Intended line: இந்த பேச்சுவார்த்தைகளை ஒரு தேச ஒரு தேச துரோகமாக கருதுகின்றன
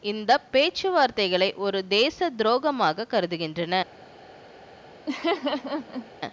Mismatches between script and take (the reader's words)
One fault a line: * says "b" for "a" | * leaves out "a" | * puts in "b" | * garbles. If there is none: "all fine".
* leaves out "ஒரு தேச"